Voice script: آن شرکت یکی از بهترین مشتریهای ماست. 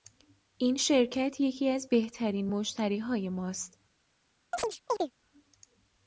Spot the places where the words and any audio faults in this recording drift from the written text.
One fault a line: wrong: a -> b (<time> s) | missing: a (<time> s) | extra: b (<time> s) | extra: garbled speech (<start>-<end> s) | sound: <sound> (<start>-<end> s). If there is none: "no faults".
wrong: آن -> این (0.6 s)
sound: chirp (4.5-5.1 s)